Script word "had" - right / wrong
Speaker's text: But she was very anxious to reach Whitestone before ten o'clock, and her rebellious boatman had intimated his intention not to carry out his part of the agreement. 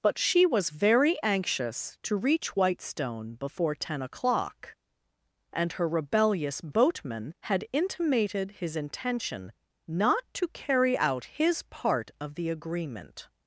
right